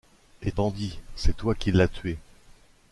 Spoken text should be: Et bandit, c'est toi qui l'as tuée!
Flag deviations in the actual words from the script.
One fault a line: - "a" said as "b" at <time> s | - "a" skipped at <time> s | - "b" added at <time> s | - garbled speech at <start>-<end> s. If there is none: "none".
none